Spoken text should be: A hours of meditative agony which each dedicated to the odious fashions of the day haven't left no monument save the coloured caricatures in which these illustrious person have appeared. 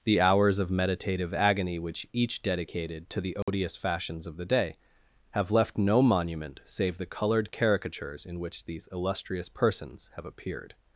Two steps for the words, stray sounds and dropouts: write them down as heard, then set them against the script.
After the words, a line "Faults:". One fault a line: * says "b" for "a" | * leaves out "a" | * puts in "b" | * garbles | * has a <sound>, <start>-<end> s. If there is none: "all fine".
The hours of meditative agony which each dedicated to the odious fashions of the day have left no monument save the coloured caricatures in which these illustrious persons have appeared.
Faults:
* says "The" for "A"
* has a dropout, 3.4-3.5 s
* says "have" for "haven't"
* says "persons" for "person"